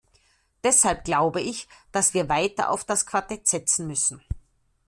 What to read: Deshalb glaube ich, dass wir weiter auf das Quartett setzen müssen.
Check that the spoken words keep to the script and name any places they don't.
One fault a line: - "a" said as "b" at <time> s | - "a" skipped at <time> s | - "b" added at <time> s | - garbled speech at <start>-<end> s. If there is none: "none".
none